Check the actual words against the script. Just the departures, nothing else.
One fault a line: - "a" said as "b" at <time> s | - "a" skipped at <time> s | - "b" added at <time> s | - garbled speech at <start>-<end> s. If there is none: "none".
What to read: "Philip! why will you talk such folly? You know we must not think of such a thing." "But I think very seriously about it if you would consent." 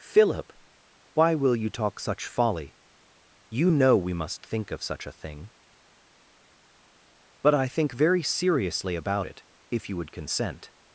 - "not" skipped at 4.4 s